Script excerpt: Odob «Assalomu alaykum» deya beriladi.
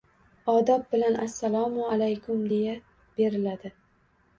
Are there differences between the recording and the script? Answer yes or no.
yes